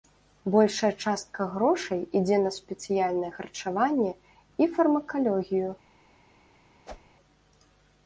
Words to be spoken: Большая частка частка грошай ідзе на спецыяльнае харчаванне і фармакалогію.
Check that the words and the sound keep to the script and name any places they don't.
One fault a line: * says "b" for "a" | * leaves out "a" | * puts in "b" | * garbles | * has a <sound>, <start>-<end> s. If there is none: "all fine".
* leaves out "частка"
* has a whoosh, 6.8-7.2 s